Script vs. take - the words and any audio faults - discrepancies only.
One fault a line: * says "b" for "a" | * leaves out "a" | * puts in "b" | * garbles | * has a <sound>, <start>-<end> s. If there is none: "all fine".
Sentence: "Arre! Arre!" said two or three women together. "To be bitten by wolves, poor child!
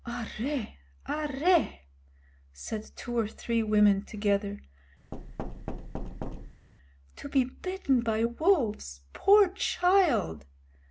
* has a thud, 5.1-6.7 s